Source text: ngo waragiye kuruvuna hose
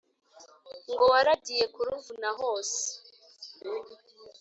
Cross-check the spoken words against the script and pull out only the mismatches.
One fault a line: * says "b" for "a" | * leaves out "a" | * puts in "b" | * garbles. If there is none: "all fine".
all fine